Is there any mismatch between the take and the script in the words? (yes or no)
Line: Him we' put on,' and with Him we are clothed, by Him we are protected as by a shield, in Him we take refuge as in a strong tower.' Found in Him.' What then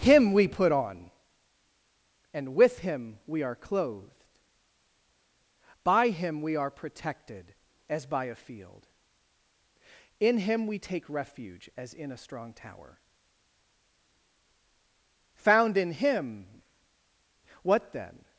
yes